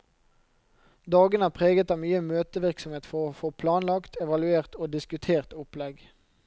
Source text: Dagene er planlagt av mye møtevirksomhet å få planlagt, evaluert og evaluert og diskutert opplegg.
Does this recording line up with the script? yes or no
no